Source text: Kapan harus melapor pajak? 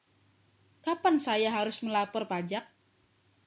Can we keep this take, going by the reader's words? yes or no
no